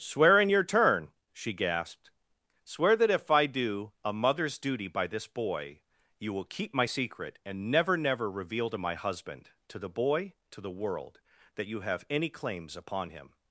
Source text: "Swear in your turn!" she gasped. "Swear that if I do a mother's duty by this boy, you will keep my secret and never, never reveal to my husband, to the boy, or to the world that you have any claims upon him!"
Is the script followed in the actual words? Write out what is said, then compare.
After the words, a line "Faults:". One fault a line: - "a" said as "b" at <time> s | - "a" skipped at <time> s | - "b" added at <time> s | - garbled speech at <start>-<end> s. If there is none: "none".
"Swear in your turn!" she gasped. "Swear that if I do a mother's duty by this boy, you will keep my secret and never, never reveal to my husband, to the boy, to the world that you have any claims upon him!"
Faults:
- "or" skipped at 10.3 s